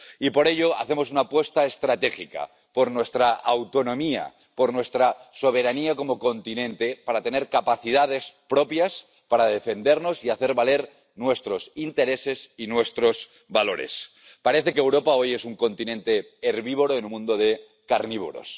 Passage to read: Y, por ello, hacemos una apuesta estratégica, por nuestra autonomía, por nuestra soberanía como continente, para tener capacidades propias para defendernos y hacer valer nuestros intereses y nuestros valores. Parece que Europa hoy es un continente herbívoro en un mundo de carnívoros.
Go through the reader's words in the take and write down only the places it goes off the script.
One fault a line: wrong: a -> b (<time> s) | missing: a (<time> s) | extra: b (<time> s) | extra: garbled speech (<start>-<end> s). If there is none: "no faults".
missing: un (17.1 s)